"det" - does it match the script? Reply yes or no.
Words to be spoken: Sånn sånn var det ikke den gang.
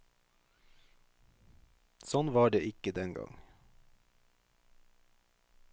yes